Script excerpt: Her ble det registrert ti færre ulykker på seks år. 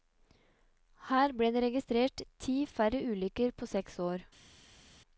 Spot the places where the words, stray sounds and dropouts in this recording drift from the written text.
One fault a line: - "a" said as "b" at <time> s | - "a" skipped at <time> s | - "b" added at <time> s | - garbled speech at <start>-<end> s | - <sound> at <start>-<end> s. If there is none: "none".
none